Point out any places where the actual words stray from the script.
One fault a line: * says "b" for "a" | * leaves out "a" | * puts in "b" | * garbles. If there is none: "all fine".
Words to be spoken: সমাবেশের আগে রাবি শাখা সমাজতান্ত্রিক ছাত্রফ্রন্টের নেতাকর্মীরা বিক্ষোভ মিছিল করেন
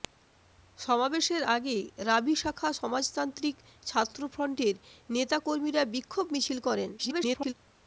* garbles